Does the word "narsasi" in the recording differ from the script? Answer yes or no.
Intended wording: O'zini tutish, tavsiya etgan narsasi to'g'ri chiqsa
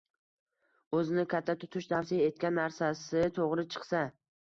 no